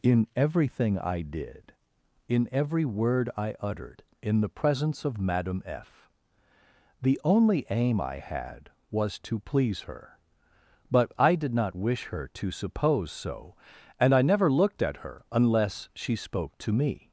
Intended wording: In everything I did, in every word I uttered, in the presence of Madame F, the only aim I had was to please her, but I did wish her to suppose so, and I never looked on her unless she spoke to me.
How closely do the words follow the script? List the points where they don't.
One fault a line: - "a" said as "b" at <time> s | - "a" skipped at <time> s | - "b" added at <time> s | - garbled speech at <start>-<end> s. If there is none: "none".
- "not" added at 11.5 s
- "on" said as "at" at 14.8 s